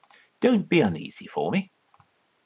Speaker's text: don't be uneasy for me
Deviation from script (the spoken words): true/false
false